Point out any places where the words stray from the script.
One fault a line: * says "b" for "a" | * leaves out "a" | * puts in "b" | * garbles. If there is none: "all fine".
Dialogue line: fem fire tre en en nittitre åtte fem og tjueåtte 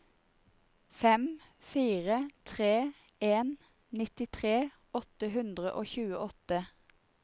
* leaves out "en"
* says "hundre" for "fem"